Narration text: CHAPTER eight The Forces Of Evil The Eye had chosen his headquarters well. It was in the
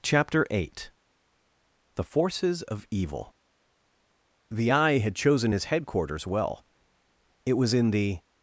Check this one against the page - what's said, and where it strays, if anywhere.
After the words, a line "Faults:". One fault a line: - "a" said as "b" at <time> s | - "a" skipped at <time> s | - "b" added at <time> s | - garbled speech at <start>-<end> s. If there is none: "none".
CHAPTER eight The Forces Of Evil The Eye had chosen his headquarters well. It was in the
Faults:
none